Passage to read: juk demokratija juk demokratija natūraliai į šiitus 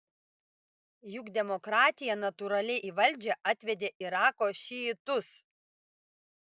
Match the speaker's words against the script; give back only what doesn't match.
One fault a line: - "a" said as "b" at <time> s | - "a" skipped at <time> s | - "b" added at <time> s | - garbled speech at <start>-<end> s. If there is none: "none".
- "juk demokratija natūraliai į" said as "natūraliai į valdžią atvedė irako" at 2.2 s